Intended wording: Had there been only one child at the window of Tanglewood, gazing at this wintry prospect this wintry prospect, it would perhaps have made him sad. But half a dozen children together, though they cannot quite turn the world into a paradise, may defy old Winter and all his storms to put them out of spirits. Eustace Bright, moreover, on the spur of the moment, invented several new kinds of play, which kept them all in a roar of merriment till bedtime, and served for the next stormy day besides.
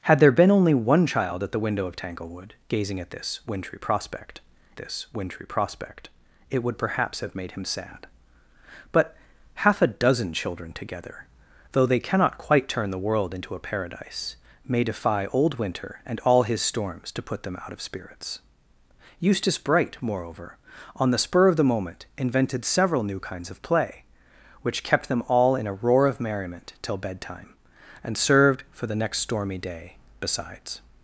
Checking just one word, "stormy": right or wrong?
right